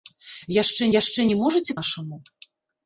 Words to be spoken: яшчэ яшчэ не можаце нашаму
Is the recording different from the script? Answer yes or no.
no